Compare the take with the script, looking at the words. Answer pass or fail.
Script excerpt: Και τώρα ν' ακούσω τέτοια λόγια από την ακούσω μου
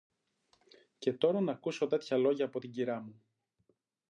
fail